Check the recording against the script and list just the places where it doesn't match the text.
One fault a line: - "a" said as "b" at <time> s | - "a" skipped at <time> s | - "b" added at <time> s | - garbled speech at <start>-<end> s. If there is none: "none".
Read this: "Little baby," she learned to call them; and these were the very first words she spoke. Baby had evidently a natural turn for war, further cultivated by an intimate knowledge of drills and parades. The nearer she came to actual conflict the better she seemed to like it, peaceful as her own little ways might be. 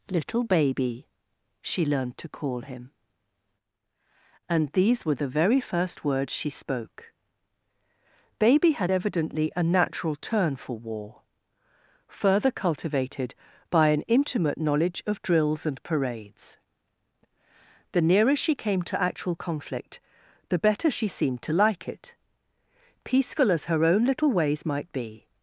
- "them" said as "him" at 2.6 s